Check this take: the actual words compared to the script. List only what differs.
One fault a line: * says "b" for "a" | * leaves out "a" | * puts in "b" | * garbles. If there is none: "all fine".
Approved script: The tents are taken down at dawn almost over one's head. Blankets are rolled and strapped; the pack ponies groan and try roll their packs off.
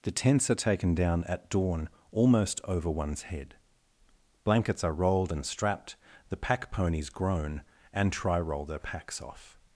all fine